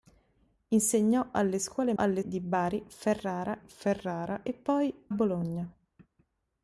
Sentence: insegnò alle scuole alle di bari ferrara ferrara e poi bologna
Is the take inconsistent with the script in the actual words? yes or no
no